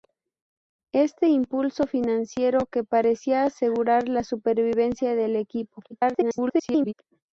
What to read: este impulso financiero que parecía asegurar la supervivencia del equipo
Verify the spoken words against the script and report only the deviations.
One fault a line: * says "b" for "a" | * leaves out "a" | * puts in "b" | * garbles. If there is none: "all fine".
* garbles